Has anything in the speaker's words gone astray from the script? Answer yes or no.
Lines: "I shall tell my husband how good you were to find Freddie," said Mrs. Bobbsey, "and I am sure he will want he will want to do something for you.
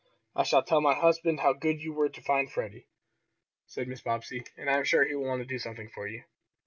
yes